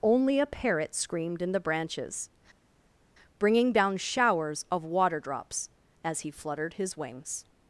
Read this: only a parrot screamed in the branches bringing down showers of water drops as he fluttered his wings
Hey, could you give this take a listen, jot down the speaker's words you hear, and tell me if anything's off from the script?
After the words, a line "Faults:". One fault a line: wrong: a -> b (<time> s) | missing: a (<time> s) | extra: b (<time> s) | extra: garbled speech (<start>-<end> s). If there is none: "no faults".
only a parrot screamed in the branches bringing down showers of water drops as he fluttered his wings
Faults:
no faults